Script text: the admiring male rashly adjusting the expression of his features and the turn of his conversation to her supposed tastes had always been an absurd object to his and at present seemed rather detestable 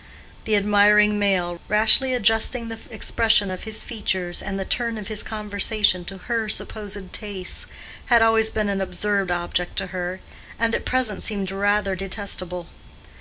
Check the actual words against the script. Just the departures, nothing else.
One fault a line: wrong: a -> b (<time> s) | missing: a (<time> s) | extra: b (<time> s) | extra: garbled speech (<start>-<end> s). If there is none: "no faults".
wrong: his -> her (9.9 s)